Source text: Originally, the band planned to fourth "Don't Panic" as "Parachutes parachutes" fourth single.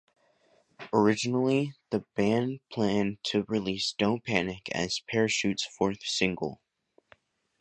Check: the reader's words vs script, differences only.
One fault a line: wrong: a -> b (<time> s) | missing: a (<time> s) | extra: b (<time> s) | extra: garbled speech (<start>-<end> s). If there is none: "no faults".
wrong: fourth -> release (3.5 s)
missing: parachutes (5.6 s)